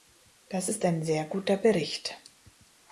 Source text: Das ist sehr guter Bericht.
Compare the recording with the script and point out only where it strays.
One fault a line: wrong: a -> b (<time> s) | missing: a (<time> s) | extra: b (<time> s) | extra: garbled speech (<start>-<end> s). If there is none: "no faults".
extra: ein (0.8 s)